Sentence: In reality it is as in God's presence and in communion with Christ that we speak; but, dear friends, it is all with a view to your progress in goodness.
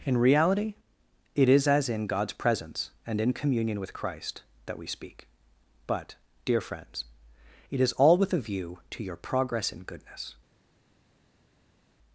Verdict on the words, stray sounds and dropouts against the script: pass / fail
pass